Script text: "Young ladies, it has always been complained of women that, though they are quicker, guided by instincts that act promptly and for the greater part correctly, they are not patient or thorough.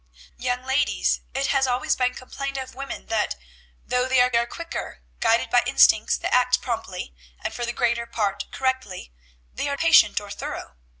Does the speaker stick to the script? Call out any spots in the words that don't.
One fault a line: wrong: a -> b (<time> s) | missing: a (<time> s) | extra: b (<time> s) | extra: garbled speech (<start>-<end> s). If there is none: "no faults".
extra: are (4.3 s)
missing: not (9.8 s)